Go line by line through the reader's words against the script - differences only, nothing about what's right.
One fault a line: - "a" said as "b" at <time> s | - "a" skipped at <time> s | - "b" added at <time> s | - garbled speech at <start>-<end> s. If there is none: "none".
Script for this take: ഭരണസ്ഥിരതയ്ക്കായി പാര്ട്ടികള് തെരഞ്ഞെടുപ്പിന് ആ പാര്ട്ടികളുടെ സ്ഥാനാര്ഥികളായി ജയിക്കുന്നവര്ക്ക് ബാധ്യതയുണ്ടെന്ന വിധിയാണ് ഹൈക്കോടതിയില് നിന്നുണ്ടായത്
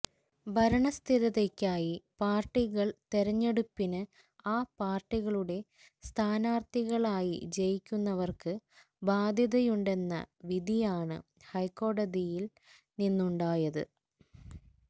none